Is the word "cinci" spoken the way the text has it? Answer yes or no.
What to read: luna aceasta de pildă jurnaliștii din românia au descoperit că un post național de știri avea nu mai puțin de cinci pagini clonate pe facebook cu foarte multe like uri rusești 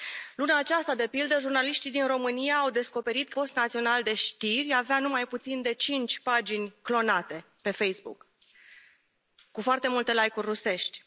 yes